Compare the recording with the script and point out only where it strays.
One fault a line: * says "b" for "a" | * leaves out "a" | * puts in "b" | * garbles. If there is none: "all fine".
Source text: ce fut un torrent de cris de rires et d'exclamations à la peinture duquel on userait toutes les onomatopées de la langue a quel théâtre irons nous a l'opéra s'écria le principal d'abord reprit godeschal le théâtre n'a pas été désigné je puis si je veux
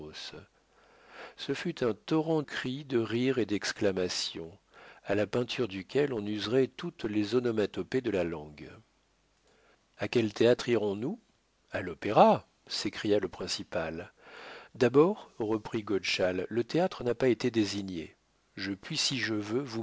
* leaves out "de"